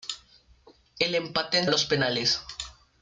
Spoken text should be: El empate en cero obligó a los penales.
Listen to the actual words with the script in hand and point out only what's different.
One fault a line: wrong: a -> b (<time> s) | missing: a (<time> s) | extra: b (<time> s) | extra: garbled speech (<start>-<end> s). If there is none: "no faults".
missing: cero obligó (1.7 s)